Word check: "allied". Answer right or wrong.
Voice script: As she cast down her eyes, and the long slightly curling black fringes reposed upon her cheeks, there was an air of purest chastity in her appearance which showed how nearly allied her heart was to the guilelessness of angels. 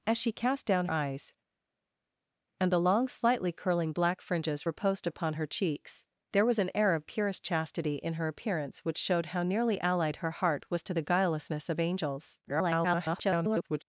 right